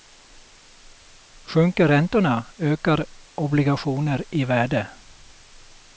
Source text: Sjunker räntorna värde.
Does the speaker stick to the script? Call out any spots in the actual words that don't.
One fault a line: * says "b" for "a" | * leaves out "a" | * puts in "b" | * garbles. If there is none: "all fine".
* puts in "ökar obligationer i"